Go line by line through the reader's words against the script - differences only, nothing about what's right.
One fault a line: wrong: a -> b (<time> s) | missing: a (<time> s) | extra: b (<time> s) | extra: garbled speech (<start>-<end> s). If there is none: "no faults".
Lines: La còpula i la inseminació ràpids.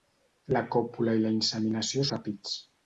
no faults